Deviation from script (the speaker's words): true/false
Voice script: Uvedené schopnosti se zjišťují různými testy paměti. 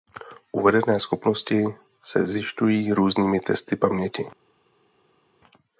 false